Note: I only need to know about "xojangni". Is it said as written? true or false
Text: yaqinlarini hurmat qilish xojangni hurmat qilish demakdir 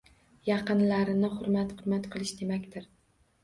false